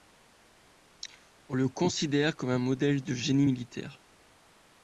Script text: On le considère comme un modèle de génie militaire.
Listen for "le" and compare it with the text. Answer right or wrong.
right